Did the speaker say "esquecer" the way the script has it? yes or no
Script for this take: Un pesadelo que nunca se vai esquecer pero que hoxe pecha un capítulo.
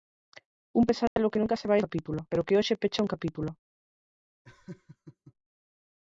no